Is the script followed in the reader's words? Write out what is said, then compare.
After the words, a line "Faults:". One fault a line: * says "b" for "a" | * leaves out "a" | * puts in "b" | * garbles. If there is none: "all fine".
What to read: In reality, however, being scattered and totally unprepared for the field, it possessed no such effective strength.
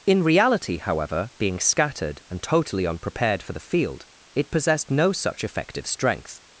In reality, however, being scattered and totally unprepared for the field, it possessed no such effective strength.
Faults:
all fine